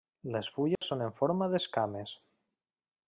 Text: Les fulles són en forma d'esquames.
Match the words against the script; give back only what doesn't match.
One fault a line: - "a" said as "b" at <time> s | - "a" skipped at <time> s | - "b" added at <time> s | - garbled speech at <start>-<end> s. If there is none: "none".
none